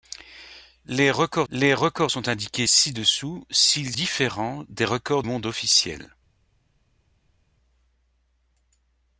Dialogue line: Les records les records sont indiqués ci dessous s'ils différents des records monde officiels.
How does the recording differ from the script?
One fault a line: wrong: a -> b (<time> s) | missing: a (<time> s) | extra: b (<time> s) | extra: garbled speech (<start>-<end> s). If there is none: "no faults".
no faults